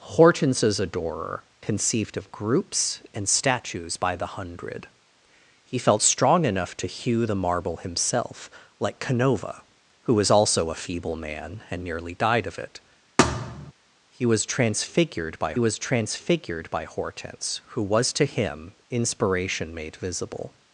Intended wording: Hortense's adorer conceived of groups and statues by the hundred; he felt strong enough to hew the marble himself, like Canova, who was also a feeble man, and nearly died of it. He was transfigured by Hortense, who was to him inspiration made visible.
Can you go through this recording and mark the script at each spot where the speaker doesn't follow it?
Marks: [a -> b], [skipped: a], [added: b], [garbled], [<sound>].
Hortense's adorer conceived of groups and statues by the hundred; he felt strong enough to hew the marble himself, like Canova, who was also a feeble man, and nearly died of it. [thud] He was transfigured by [added: was transfigured by] Hortense, who was to him inspiration made visible.